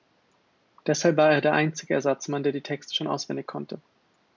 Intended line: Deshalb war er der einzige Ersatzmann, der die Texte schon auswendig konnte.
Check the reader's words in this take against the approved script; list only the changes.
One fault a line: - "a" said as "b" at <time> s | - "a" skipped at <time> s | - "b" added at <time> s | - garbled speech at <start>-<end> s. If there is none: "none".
none